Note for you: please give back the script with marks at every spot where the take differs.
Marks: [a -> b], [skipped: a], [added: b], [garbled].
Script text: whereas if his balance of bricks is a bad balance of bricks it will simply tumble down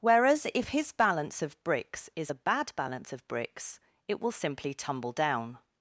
whereas if his balance of bricks is a bad balance of bricks it will simply tumble down